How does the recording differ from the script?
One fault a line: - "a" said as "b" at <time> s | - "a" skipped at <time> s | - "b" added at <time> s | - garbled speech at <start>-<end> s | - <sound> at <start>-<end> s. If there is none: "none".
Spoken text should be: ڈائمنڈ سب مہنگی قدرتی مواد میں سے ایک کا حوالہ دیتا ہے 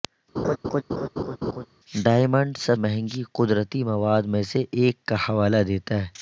- laugh at 0.4-1.7 s